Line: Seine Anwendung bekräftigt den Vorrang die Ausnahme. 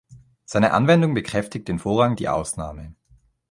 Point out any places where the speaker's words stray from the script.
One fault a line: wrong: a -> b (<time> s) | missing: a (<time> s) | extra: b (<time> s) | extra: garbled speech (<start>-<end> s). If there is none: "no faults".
no faults